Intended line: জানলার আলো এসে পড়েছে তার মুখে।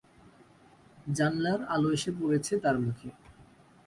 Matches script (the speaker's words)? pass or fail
pass